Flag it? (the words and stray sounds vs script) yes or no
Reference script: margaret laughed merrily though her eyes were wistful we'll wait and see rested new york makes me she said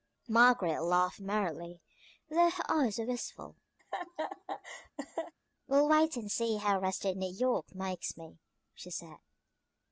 yes